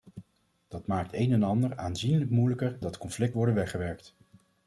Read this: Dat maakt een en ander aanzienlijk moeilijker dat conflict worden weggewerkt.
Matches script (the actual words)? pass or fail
pass